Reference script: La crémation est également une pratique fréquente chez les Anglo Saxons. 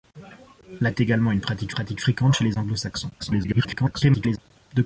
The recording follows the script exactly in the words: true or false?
false